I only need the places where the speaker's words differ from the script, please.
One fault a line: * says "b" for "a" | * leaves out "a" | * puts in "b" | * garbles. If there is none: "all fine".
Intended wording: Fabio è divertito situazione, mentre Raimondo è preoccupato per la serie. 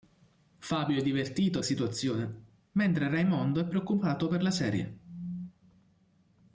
all fine